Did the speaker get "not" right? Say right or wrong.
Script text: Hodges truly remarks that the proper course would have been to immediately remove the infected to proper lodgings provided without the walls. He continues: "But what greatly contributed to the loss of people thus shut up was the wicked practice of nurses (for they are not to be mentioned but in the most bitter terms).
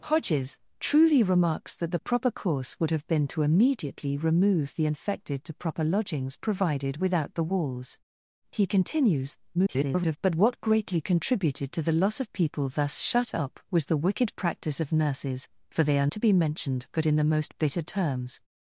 wrong